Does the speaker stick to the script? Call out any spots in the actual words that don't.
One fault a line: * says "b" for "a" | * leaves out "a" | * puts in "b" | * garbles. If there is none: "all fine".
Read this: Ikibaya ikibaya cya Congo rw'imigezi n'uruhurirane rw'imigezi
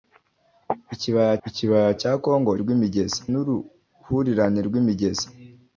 all fine